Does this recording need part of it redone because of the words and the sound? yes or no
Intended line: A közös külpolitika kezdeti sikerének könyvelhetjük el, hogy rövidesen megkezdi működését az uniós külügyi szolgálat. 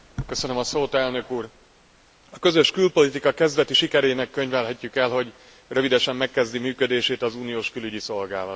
no